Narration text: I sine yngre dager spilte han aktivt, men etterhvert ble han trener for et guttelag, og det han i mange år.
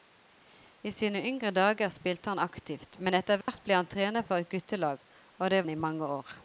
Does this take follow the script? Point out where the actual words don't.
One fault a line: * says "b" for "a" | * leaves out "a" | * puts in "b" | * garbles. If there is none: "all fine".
all fine